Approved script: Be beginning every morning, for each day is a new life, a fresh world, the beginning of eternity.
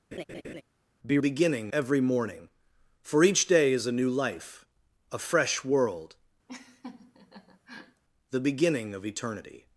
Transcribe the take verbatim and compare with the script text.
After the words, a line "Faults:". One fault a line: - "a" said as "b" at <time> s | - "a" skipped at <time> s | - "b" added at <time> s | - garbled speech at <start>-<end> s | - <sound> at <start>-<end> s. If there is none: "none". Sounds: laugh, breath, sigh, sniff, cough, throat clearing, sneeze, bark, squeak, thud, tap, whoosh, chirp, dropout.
Be beginning every morning, for each day is a new life, a fresh world, the beginning of eternity.
Faults:
- laugh at 0.1-0.6 s
- laugh at 6.5-8.0 s